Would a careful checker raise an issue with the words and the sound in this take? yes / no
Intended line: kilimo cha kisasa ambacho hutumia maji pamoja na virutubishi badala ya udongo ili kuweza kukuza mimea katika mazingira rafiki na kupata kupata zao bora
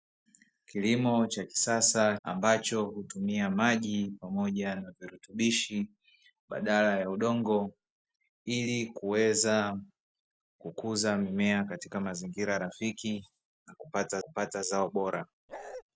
yes